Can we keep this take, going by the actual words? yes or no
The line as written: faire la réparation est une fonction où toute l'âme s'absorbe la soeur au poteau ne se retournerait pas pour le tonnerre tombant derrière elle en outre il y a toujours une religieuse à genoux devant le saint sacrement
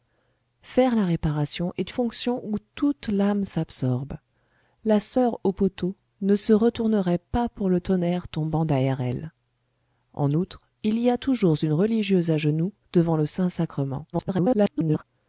no